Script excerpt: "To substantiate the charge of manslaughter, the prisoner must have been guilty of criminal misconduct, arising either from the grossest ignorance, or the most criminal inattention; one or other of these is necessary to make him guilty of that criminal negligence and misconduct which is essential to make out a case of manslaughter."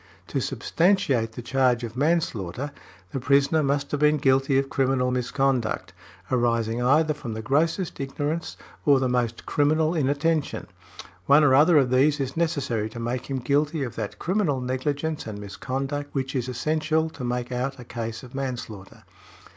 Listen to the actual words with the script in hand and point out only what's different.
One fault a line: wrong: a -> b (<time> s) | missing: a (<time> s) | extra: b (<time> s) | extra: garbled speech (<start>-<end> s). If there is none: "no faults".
no faults